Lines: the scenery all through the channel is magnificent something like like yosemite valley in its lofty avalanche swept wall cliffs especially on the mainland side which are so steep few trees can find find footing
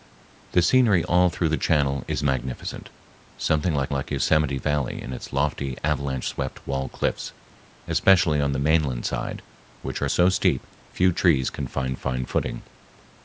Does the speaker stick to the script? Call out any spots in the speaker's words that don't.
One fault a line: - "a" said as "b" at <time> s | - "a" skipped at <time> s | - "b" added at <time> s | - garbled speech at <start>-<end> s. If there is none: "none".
none